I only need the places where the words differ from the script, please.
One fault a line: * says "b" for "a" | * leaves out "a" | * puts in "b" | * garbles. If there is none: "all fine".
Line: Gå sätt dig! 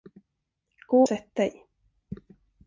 all fine